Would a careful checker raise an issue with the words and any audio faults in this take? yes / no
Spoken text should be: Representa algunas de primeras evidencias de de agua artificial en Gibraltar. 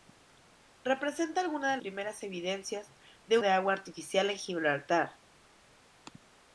no